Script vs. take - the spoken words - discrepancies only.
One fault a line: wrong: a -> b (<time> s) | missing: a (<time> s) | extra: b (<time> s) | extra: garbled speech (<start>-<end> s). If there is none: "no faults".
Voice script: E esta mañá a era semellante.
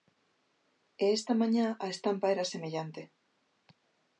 extra: estampa (1.9 s)